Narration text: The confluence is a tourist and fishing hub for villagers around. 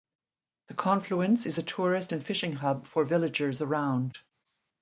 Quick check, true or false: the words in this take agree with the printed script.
true